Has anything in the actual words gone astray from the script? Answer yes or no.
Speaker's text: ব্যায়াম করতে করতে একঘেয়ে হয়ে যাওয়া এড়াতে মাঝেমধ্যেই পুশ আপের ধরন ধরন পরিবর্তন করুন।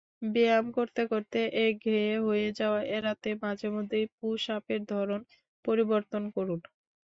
yes